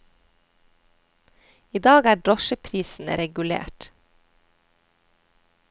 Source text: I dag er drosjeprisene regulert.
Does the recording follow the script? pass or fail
pass